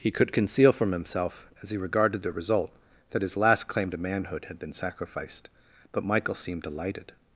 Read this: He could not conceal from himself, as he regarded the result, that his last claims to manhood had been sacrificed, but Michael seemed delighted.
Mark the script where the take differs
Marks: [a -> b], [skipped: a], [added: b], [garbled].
He could [skipped: not] conceal from himself, as he regarded the result, that his last [claims -> claim] to manhood had been sacrificed, but Michael seemed delighted.